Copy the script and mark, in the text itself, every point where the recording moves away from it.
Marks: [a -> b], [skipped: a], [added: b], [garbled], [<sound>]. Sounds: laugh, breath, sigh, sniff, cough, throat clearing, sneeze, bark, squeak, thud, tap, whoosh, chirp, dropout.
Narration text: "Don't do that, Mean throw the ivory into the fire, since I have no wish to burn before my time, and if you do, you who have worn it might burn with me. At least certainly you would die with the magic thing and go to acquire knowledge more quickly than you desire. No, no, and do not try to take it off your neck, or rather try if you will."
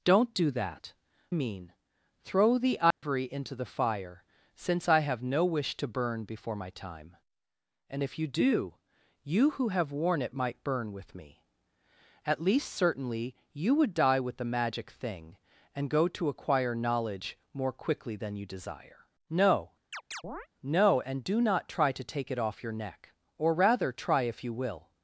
"Don't do that, Mean throw the ivory [dropout] into the fire, since I have no wish to burn before my time, and if you do, you who have worn it might burn with me. At least certainly you would die with the magic thing and go to acquire knowledge more quickly than you desire. No, [chirp] no, and do not try to take it off your neck, or rather try if you will."